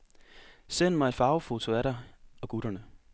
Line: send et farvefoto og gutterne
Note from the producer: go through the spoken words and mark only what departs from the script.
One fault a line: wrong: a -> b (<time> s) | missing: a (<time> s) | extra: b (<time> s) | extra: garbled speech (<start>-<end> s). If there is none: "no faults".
extra: mig (0.9 s)
extra: af dig (1.7 s)